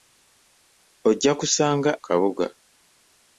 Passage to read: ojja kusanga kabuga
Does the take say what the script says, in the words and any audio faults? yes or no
yes